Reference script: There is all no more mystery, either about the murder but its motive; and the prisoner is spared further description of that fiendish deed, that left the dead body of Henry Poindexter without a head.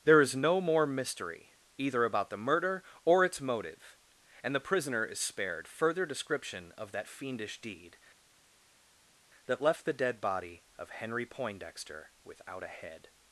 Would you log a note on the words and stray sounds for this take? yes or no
yes